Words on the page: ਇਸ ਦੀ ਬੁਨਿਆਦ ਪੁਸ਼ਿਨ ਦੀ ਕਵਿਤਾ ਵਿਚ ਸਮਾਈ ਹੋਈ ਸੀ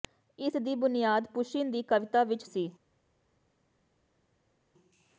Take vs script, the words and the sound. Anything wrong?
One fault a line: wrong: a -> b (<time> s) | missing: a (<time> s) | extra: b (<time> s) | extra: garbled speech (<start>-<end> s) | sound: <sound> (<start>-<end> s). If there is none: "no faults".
missing: ਸਮਾਈ ਹੋਈ (2.4 s)